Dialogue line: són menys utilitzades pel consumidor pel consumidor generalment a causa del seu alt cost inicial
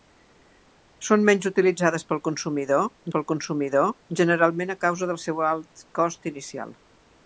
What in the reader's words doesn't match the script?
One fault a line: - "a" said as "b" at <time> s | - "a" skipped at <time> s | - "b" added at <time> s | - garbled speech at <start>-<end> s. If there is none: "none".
none